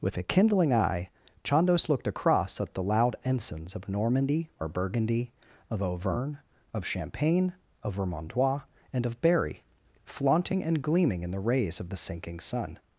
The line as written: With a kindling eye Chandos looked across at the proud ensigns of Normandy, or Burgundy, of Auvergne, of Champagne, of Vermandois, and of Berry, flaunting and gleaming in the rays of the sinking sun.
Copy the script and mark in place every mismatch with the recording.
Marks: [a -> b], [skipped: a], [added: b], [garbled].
With a kindling eye Chandos looked across at the [proud -> loud] ensigns of Normandy, or Burgundy, of Auvergne, of Champagne, of Vermandois, and of Berry, flaunting and gleaming in the rays of the sinking sun.